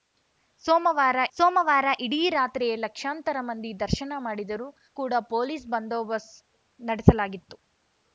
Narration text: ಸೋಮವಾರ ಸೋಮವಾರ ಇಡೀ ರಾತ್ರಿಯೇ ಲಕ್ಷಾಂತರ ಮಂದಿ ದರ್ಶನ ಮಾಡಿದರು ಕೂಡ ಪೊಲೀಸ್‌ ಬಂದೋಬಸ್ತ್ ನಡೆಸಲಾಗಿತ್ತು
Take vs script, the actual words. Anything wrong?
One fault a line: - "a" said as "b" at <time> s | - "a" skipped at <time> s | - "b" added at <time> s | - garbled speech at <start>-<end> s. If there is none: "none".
none